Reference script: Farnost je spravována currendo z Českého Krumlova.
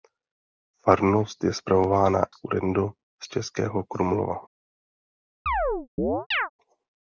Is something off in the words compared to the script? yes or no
no